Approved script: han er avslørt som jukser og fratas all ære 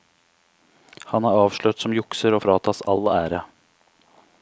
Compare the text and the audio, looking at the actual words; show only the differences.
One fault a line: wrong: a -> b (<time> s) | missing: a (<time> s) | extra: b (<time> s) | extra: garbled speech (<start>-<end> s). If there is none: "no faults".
no faults